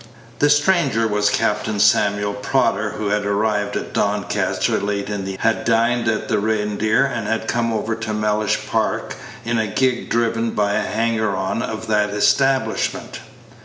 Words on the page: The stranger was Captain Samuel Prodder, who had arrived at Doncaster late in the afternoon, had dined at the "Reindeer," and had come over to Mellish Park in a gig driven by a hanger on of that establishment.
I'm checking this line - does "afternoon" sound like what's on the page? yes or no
no